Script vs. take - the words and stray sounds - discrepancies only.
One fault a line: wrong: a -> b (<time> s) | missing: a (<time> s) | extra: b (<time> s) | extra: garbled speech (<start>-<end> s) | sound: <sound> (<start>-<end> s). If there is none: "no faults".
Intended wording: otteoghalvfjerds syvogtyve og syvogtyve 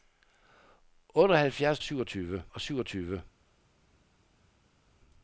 no faults